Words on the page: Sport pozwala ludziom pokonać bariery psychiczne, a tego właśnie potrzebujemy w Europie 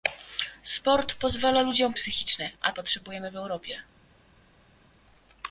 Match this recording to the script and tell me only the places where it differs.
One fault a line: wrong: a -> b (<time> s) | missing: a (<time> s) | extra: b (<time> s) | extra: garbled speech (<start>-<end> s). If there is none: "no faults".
missing: pokonać bariery (1.9 s)
missing: tego właśnie (2.7 s)